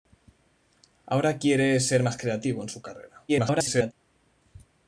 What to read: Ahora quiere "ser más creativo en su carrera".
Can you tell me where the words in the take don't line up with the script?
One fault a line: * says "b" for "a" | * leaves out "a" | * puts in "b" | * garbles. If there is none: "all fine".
* garbles